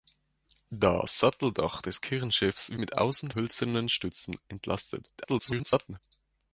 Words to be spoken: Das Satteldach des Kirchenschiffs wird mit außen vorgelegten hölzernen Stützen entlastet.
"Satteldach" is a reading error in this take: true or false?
false